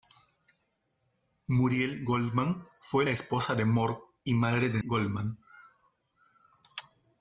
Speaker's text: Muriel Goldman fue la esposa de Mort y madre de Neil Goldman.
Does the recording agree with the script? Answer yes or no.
no